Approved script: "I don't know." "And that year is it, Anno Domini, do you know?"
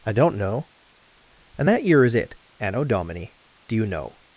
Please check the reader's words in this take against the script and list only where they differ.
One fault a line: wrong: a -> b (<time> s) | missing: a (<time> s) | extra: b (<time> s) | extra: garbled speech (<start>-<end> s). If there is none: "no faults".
no faults